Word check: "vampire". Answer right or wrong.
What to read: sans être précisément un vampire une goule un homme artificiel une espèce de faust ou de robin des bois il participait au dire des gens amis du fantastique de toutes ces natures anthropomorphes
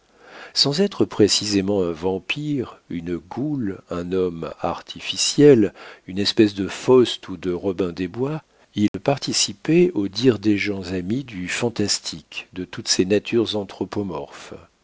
right